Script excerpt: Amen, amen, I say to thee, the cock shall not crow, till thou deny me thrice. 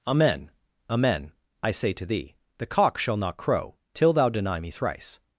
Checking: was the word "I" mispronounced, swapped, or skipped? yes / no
no